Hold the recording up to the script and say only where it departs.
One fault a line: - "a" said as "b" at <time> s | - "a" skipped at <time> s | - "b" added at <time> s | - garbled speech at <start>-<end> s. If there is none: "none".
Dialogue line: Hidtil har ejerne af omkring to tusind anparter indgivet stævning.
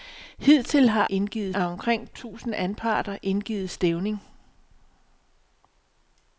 - "ejerne" said as "indgivet" at 1.1 s
- "to" skipped at 2.1 s